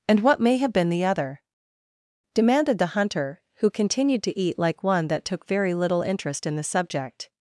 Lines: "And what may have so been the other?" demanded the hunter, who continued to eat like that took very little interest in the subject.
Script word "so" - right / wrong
wrong